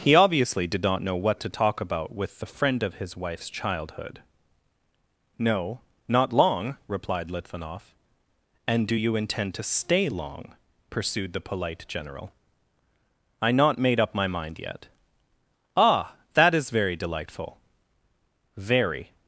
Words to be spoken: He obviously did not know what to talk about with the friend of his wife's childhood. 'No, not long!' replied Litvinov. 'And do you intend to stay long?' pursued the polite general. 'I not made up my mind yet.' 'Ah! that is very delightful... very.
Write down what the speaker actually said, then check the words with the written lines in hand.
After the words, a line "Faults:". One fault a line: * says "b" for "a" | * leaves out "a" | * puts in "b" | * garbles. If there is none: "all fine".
He obviously did not know what to talk about with the friend of his wife's childhood. 'No, not long!' replied Litvinov. 'And do you intend to stay long?' pursued the polite general. 'I not made up my mind yet.' 'Ah! that is very delightful... very.
Faults:
all fine